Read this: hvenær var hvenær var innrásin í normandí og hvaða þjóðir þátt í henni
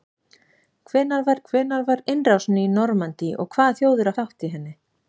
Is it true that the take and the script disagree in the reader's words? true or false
false